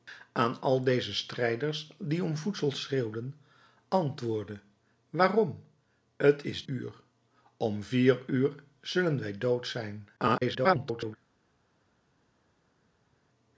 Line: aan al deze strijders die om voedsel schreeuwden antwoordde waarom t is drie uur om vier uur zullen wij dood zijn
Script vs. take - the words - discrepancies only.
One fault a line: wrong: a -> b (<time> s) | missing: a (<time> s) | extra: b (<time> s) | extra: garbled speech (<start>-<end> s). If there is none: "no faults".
missing: drie (6.6 s)
extra: garbled speech (10.2-11.2 s)